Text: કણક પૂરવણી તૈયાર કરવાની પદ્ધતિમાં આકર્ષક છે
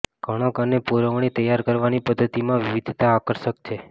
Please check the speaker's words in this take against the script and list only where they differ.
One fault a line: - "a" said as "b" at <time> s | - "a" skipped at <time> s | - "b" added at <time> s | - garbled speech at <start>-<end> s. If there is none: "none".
- "અને" added at 0.6 s
- "વિવિધતા" added at 2.6 s